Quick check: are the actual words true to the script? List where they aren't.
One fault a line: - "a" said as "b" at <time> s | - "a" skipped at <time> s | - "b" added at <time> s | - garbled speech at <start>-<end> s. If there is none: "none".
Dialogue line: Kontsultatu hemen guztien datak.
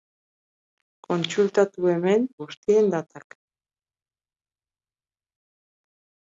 none